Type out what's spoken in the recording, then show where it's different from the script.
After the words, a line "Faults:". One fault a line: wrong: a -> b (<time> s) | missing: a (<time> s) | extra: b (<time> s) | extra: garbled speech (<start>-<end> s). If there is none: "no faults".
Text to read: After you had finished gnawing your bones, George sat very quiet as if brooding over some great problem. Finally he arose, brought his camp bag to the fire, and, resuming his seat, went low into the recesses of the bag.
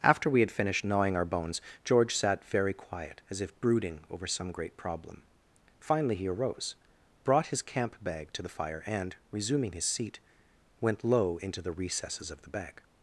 After we had finished gnawing our bones, George sat very quiet as if brooding over some great problem. Finally he arose, brought his camp bag to the fire, and, resuming his seat, went low into the recesses of the bag.
Faults:
wrong: you -> we (0.3 s)
wrong: your -> our (1.1 s)